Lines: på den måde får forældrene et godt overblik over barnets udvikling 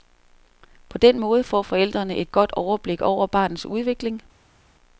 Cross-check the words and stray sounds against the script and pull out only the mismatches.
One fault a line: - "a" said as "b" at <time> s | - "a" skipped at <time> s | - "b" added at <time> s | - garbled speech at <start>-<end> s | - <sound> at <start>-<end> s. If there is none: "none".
none